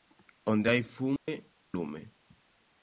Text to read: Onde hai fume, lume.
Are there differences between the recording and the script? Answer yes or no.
no